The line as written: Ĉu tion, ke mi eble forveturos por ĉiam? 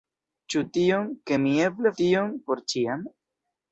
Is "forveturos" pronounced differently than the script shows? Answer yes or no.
yes